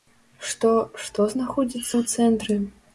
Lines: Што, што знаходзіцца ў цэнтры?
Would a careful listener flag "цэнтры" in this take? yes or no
no